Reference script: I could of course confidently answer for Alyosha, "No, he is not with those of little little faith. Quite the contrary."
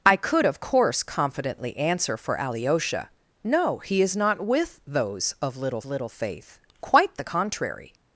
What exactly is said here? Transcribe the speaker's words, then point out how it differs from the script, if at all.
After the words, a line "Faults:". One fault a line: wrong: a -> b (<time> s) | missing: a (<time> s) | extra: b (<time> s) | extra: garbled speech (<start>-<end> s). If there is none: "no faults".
I could of course confidently answer for Alyosha, "No, he is not with those of little little faith. Quite the contrary."
Faults:
no faults